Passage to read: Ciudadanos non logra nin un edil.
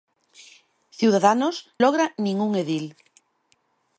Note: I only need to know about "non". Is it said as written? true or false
false